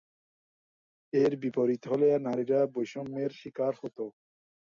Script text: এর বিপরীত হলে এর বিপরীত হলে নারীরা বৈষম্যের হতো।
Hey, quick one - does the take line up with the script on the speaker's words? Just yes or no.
no